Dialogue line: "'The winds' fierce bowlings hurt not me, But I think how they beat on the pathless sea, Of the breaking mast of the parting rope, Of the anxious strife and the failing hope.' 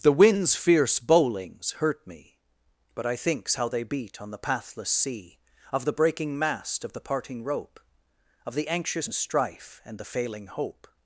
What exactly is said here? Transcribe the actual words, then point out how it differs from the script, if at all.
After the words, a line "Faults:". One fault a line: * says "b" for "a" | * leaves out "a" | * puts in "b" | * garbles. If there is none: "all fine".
"'The winds' fierce bowlings hurt me, But I thinks how they beat on the pathless sea, Of the breaking mast of the parting rope, Of the anxious strife and the failing hope.'
Faults:
* leaves out "not"
* says "thinks" for "think"